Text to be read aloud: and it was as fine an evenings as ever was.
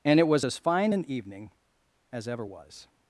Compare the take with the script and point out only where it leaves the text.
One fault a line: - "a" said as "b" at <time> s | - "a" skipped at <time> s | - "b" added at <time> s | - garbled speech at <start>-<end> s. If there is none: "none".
- "evenings" said as "evening" at 1.1 s